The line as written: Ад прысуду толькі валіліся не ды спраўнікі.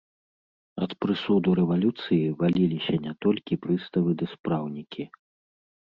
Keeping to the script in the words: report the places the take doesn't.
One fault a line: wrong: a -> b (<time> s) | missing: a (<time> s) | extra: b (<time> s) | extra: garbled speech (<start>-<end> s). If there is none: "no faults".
wrong: толькі -> рэвалюцыі (1.6 s)
extra: толькі прыставы (3.3 s)